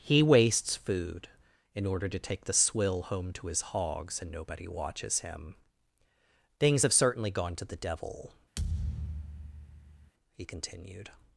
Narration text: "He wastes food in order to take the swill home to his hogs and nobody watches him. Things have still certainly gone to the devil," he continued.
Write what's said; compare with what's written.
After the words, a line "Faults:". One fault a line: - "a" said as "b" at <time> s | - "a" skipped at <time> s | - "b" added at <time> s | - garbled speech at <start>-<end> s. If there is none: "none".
"He wastes food in order to take the swill home to his hogs and nobody watches him. Things have certainly gone to the devil," he continued.
Faults:
- "still" skipped at 6.9 s